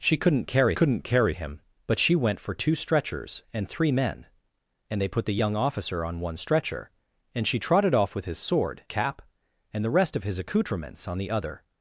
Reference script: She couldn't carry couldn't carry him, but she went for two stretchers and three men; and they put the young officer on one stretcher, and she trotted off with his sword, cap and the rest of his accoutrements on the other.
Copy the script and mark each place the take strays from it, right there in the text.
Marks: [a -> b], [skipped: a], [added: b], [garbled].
She couldn't carry couldn't carry him, but she went for two stretchers and three men; and they put the young officer on one stretcher, and she trotted off with his sword, cap and the rest of his accoutrements on the other.